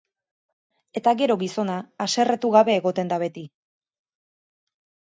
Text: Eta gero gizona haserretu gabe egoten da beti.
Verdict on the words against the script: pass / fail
pass